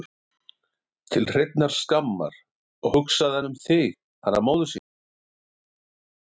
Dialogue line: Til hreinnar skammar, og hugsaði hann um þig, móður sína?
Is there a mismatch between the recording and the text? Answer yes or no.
yes